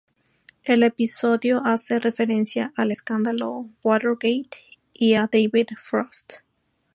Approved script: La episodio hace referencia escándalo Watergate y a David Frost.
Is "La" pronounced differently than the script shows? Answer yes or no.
yes